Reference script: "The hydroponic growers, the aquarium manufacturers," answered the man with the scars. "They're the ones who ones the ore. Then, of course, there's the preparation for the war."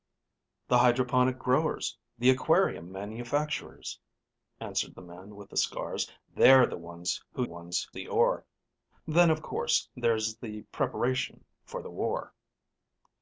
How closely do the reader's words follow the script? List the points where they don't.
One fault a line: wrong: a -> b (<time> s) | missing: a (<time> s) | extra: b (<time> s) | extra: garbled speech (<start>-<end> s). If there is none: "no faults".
no faults